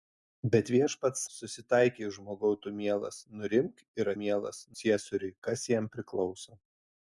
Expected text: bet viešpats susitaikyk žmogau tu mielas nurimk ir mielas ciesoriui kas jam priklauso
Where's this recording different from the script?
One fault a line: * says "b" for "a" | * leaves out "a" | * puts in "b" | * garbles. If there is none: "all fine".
all fine